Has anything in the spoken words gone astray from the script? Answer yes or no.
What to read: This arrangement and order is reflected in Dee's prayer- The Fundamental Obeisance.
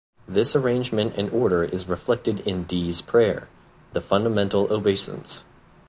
no